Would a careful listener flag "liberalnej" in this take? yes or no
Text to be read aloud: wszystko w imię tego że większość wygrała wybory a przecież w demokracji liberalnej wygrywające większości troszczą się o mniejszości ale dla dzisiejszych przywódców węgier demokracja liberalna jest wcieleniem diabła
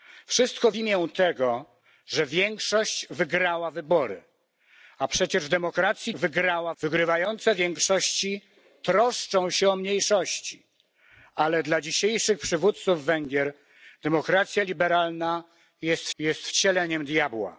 yes